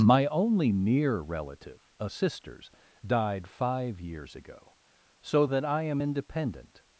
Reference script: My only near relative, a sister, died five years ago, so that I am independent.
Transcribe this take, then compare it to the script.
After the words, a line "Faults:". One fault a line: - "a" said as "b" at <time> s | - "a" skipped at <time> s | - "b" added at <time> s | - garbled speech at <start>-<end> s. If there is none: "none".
My only near relative, a sisters, died five years ago, so that I am independent.
Faults:
- "sister" said as "sisters" at 2.1 s